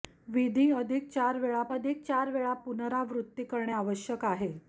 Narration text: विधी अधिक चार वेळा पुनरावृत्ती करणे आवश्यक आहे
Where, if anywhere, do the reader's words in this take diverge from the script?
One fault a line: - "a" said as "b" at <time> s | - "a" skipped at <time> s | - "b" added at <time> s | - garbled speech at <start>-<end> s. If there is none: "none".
- "अधिक चार वेळा" added at 1.7 s